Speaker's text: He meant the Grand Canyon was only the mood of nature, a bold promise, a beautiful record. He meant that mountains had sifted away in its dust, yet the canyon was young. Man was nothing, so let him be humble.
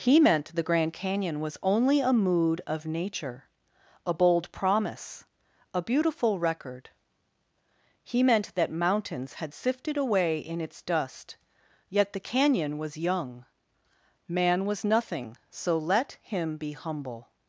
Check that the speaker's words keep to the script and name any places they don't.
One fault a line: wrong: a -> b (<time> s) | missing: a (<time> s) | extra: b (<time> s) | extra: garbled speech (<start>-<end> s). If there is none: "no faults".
wrong: the -> a (2.0 s)